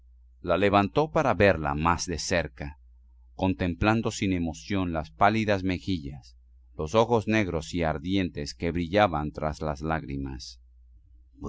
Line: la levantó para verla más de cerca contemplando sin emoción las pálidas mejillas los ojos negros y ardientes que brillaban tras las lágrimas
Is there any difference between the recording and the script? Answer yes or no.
no